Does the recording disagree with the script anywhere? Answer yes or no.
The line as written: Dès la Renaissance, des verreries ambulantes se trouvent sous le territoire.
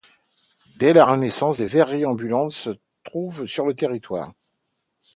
yes